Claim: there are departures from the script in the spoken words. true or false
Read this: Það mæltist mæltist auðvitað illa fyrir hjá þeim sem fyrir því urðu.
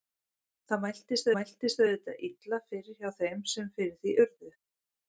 false